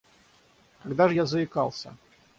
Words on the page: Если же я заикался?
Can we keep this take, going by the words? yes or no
no